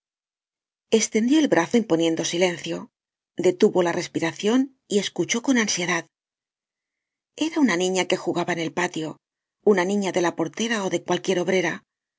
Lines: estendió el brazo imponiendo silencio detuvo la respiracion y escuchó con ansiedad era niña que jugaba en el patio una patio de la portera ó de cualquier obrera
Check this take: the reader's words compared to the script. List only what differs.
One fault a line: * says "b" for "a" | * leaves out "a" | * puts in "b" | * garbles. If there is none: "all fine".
* puts in "una"
* says "niña" for "patio"